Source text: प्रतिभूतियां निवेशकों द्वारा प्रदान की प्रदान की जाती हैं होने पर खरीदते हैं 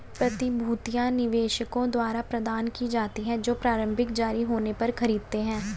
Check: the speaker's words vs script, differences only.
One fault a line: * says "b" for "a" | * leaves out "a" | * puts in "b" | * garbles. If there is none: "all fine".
* says "जाती हैं जो प्रारंभिक जारी" for "प्रदान की जाती हैं"